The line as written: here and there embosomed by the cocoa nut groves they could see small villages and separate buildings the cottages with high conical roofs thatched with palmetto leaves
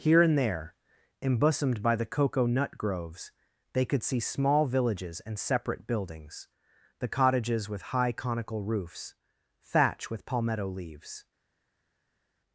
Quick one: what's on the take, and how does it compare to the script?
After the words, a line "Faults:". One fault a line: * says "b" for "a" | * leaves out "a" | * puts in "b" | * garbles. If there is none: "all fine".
here and there embosomed by the cocoa nut groves they could see small villages and separate buildings the cottages with high conical roofs thatch with palmetto leaves
Faults:
* says "thatch" for "thatched"